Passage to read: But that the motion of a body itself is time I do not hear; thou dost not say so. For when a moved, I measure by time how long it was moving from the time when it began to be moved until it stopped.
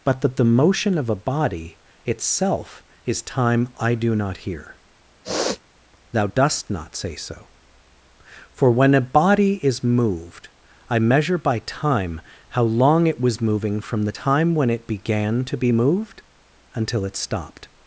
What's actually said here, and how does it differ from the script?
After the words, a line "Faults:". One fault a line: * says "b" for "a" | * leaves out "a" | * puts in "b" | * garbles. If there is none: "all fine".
But that the motion of a body itself is time I do not hear; thou dost not say so. For when a body is moved, I measure by time how long it was moving from the time when it began to be moved until it stopped.
Faults:
* puts in "body is"